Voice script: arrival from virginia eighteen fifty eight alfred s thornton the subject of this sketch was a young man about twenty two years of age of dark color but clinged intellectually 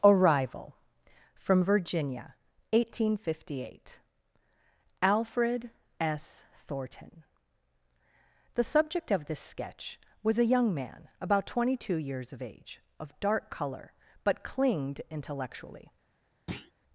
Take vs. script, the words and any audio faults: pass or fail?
fail